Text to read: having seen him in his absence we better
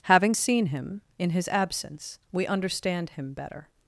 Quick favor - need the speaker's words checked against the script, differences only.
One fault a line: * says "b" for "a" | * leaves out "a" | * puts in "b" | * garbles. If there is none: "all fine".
* puts in "understand him"